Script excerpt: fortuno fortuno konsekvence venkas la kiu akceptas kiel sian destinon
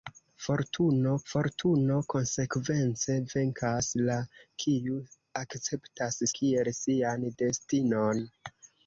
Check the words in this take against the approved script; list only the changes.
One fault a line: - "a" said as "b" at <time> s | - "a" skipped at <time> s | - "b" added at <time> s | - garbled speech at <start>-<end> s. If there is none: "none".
none